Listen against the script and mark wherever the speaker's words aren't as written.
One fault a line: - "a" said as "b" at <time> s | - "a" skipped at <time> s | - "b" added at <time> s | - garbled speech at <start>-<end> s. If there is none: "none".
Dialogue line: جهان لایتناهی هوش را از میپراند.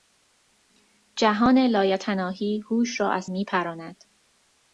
none